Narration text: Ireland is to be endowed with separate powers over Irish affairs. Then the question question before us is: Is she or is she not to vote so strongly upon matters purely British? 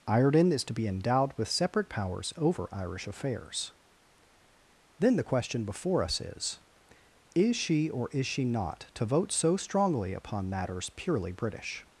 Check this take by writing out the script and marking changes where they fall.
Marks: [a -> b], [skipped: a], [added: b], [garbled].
Ireland is to be endowed with separate powers over Irish affairs. Then the question [skipped: question] before us is: Is she or is she not to vote so strongly upon matters purely British?